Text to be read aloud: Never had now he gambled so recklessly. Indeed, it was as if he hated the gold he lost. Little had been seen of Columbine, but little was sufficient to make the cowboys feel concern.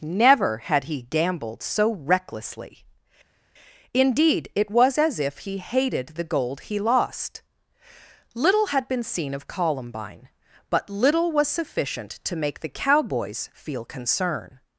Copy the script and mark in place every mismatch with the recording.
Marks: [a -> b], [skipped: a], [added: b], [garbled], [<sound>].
Never had [skipped: now] he gambled so recklessly. Indeed, it was as if he hated the gold he lost. Little had been seen of Columbine, but little was sufficient to make the cowboys feel concern.